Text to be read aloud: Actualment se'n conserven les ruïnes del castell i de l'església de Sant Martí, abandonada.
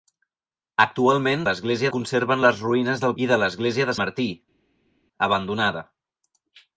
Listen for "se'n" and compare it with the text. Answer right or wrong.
wrong